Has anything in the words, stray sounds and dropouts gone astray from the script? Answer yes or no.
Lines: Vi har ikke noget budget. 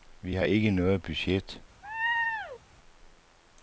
yes